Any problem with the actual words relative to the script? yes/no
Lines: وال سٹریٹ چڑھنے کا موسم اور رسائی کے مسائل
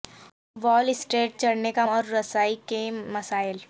yes